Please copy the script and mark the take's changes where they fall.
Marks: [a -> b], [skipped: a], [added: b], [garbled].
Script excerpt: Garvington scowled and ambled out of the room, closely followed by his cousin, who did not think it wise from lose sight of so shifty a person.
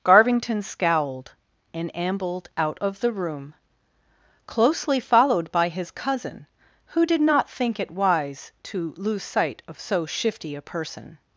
Garvington scowled and ambled out of the room, closely followed by his cousin, who did not think it wise [from -> to] lose sight of so shifty a person.